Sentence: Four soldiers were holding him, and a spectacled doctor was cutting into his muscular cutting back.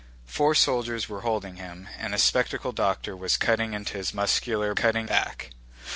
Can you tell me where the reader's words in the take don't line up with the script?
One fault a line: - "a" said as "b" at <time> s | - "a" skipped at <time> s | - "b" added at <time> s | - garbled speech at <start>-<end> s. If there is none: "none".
none